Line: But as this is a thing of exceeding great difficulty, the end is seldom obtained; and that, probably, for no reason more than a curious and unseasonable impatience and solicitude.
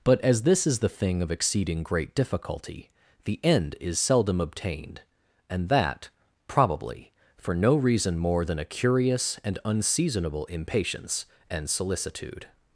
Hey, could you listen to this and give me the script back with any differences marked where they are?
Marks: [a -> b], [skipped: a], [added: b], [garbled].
But as this is [a -> the] thing of exceeding great difficulty, the end is seldom obtained; and that, probably, for no reason more than a curious and unseasonable impatience and solicitude.